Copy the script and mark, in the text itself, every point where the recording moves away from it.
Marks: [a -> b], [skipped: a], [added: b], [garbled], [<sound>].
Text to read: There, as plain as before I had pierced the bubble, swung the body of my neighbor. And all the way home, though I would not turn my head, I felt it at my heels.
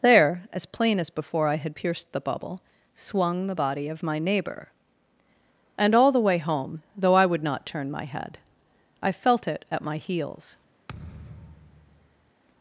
There, as plain as before I had pierced the bubble, swung the body of my neighbor. And all the way home, though I would not turn my head, I felt it at my heels. [thud]